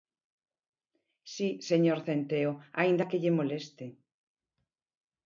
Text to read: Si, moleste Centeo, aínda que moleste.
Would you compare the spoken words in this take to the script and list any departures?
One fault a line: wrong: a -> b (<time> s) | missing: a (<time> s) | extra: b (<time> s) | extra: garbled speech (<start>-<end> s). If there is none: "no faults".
wrong: moleste -> señor (1.7 s)
extra: lle (3.2 s)